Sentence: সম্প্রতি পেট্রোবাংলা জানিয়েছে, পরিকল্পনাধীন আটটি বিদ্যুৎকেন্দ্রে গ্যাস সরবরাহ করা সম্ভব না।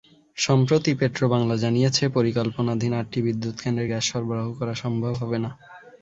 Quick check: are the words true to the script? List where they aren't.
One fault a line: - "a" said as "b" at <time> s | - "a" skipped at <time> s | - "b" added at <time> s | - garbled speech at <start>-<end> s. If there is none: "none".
- "হবে" added at 5.1 s